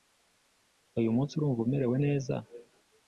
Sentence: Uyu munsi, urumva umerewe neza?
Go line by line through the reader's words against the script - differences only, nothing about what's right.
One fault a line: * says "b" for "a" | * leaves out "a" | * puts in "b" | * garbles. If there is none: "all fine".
all fine